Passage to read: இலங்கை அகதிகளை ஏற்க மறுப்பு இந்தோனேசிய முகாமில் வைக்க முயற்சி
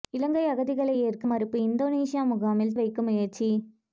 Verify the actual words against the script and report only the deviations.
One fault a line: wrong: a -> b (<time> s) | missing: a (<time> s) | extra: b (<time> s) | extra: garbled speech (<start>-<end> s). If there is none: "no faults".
no faults